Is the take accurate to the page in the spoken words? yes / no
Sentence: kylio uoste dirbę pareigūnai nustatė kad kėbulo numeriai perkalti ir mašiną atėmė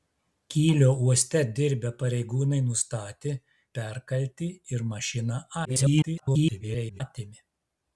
no